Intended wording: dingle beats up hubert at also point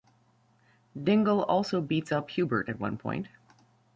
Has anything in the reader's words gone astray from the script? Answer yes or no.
yes